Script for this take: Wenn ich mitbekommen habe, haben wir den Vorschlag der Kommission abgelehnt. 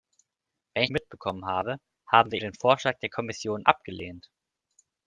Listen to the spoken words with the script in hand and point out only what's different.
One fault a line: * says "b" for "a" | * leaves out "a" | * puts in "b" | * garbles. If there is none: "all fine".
all fine